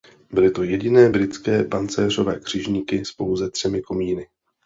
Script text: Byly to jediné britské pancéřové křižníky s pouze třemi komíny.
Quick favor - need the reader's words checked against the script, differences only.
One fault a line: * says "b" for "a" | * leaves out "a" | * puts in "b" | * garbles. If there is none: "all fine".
all fine